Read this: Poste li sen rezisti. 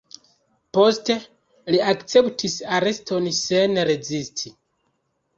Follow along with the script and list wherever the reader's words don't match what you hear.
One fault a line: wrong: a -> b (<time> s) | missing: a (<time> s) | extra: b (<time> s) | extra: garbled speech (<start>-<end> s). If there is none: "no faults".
extra: akceptis areston (1.9 s)